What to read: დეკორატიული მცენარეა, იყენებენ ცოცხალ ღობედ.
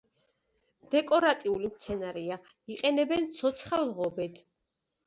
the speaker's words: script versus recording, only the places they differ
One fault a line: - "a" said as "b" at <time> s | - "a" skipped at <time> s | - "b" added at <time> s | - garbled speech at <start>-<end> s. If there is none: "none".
none